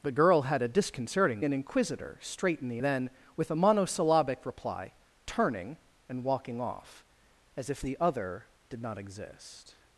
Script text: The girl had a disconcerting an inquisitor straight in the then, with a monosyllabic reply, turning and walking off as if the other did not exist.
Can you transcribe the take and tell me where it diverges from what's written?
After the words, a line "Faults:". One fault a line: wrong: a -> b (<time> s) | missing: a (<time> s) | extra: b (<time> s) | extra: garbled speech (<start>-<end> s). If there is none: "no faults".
The girl had a disconcerting an inquisitor straight in the then, with a monosyllabic reply, turning and walking off as if the other did not exist.
Faults:
no faults